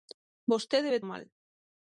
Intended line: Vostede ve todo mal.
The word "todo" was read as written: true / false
false